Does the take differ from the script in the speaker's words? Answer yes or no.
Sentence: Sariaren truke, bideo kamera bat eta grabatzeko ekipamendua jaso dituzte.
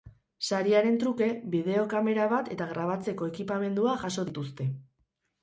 no